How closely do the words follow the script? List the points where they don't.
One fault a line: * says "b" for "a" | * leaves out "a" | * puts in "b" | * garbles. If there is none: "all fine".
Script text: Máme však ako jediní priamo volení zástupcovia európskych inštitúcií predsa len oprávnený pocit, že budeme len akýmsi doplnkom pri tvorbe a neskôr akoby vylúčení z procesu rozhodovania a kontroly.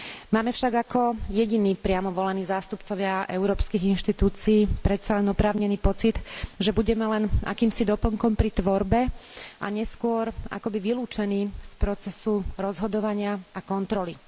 all fine